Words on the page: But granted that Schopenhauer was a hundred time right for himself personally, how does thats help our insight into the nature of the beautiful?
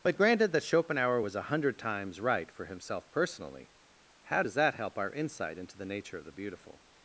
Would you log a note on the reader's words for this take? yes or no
yes